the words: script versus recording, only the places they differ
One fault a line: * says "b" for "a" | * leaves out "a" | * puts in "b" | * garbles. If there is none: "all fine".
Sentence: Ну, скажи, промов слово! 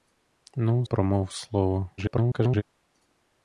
* leaves out "скажи"
* garbles